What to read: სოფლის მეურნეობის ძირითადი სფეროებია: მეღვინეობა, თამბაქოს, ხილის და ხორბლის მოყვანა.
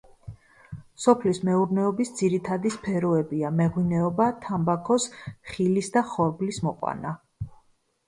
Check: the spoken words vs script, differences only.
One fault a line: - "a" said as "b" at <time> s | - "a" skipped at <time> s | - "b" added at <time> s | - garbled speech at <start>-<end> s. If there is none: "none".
none